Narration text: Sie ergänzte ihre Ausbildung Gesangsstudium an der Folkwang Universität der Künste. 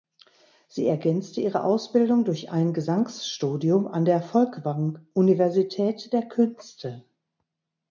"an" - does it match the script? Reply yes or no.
yes